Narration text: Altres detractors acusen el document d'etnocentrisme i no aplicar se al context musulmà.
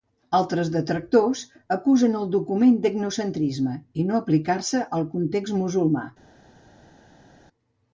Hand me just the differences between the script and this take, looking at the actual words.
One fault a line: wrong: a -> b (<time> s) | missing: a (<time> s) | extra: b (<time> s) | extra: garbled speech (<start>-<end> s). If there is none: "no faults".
no faults